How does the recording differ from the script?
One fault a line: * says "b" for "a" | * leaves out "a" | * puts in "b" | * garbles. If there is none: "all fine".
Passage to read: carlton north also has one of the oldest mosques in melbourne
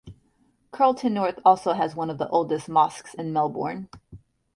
all fine